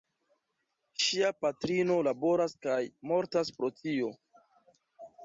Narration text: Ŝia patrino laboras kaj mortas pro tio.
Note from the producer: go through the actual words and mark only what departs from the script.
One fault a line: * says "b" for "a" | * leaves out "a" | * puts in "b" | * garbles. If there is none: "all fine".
all fine